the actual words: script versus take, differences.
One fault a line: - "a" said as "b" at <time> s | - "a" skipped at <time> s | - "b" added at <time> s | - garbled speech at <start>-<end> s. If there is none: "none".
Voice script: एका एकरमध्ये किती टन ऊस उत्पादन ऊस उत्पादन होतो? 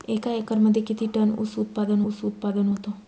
none